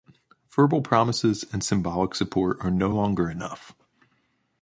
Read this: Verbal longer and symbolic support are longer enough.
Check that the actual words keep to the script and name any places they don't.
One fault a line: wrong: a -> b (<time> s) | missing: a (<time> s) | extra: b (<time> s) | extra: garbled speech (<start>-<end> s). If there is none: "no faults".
wrong: longer -> promises (0.8 s)
extra: no (2.7 s)